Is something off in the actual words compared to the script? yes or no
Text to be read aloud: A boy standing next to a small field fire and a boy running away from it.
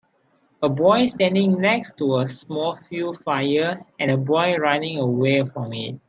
no